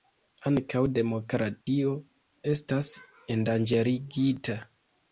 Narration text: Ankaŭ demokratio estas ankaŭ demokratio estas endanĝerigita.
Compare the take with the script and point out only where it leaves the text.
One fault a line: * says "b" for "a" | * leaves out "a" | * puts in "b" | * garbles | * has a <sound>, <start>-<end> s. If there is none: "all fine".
* has a dropout, 1.6-1.7 s
* leaves out "ankaŭ demokratio estas"